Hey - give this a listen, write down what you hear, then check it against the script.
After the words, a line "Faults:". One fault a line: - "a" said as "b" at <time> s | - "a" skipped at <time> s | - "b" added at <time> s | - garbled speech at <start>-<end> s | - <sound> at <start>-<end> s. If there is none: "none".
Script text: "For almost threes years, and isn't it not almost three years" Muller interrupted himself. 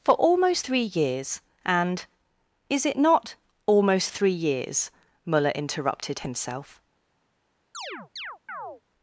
"For almost three years, and is it not almost three years" Muller interrupted himself.
Faults:
- "threes" said as "three" at 0.6 s
- "isn't" said as "is" at 2.7 s
- chirp at 7.7-8.8 s